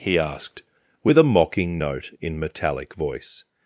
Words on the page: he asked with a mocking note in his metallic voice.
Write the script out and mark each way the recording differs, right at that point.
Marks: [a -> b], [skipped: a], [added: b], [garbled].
he asked with a mocking note in [skipped: his] metallic voice.